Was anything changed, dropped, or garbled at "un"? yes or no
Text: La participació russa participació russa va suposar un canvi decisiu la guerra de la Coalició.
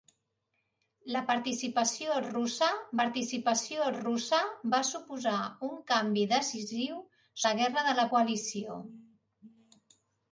no